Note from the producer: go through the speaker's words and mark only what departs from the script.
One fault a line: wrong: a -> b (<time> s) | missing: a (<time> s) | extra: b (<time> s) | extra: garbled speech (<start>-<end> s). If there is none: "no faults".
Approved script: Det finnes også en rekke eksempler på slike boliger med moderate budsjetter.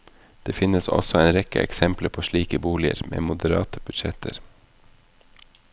no faults